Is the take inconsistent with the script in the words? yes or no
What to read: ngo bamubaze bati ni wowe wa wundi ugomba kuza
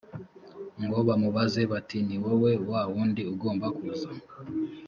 no